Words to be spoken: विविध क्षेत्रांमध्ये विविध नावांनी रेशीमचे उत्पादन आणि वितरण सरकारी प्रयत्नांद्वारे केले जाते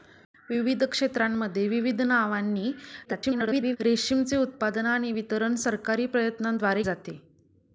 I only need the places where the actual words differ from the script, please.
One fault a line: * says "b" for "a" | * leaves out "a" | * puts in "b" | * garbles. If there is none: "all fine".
* garbles
* leaves out "केले"